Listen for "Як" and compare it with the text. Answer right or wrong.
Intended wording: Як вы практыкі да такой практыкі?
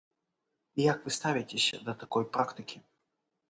right